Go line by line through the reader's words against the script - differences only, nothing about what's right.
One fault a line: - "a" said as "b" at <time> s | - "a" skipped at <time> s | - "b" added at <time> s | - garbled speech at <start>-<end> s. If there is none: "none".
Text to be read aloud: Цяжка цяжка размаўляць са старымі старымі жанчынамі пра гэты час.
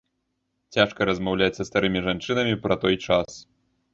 - "цяжка" skipped at 1.1 s
- "старымі" skipped at 2.0 s
- "гэты" said as "той" at 2.8 s